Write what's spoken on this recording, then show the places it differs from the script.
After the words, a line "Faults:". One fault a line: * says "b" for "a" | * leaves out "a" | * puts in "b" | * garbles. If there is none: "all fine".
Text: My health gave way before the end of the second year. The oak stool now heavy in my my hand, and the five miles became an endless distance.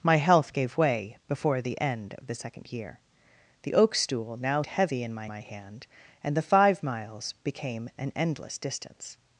My health gave way before the end of the second year. The oak stool now heavy in my my hand, and the five miles became an endless distance.
Faults:
all fine